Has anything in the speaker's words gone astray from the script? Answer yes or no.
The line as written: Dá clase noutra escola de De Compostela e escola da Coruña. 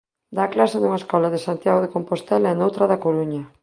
yes